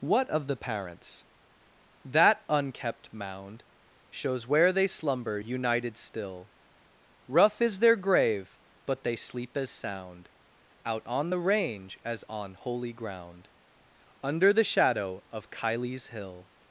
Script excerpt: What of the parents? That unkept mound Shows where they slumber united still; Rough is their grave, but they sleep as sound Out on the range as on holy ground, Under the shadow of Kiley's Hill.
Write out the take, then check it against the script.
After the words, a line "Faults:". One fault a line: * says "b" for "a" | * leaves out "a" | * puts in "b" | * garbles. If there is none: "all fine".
What of the parents? That unkept mound Shows where they slumber united still; Rough is their grave, but they sleep as sound Out on the range as on holy ground, Under the shadow of Kiley's Hill.
Faults:
all fine